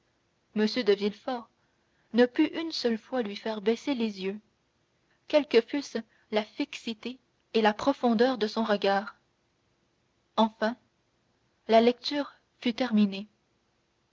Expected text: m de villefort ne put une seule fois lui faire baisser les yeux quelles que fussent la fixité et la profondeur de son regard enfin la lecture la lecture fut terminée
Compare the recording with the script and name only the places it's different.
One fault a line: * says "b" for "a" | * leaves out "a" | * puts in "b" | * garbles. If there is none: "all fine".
* leaves out "la lecture"